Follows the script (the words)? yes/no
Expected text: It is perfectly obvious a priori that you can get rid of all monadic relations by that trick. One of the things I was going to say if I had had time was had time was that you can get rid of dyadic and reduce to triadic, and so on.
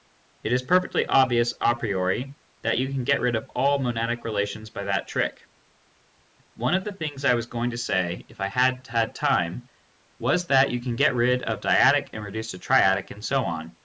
no